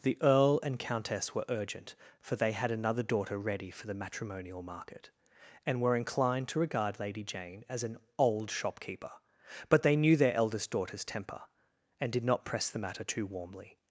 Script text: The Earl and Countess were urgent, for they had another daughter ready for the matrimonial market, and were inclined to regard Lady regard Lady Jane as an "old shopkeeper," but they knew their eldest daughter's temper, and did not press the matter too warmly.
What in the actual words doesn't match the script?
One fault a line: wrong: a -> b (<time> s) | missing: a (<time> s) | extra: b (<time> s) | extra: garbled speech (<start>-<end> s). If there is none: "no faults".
missing: regard Lady (7.2 s)